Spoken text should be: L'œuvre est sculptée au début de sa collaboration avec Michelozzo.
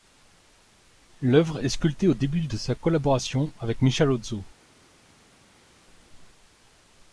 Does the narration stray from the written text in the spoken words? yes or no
no